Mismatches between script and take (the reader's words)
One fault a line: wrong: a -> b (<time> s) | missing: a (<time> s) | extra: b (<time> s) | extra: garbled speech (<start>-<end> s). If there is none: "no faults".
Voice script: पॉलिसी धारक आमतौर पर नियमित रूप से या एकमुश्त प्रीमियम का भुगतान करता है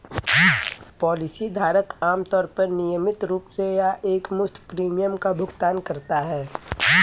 no faults